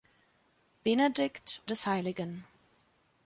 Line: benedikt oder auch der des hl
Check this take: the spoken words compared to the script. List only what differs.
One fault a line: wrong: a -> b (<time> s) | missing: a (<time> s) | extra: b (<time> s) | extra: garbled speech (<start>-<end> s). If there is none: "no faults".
missing: oder auch der (1.6 s)